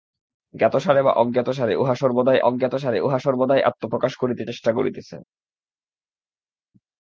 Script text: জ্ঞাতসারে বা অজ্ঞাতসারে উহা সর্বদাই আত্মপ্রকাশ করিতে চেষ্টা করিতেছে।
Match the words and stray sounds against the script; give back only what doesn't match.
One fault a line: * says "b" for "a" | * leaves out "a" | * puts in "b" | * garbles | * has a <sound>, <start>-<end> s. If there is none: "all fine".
* puts in "অজ্ঞাতসারে উহা সর্বদাই"